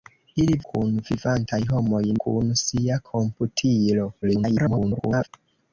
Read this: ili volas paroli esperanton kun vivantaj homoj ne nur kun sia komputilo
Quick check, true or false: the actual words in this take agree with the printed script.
false